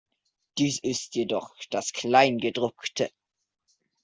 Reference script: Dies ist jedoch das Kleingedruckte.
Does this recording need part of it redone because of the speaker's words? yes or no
no